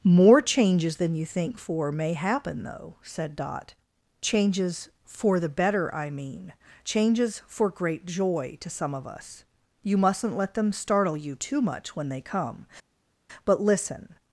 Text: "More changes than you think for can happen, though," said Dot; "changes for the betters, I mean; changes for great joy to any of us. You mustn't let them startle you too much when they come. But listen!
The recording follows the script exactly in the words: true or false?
false